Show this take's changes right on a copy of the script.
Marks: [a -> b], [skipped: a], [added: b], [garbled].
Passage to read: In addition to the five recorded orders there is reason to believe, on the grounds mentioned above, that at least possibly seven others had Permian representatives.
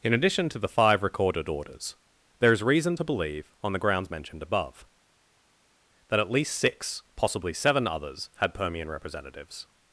In addition to the five recorded orders there is reason to believe, on the grounds mentioned above, that at least [added: six] possibly seven others had Permian representatives.